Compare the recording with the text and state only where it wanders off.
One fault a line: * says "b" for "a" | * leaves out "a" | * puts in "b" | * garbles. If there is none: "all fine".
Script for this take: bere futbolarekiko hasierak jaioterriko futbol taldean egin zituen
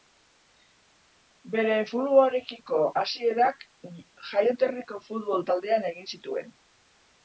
all fine